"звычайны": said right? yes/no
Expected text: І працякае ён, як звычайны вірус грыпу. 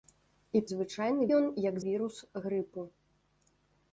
no